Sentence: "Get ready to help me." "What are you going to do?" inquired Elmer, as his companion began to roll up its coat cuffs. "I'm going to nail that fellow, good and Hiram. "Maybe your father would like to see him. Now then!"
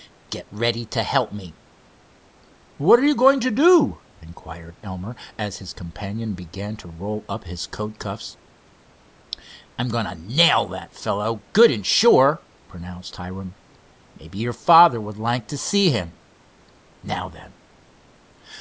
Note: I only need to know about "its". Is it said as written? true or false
false